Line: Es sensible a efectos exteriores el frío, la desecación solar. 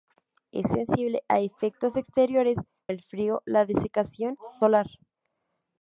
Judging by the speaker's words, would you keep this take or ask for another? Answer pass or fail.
pass